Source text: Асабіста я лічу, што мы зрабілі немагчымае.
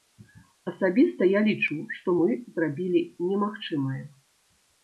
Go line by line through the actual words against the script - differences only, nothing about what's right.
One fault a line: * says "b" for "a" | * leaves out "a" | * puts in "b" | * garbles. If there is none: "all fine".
all fine